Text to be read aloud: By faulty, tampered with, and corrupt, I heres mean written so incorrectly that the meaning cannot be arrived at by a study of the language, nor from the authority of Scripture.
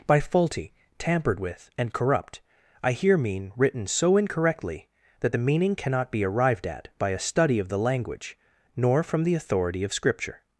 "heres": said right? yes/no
no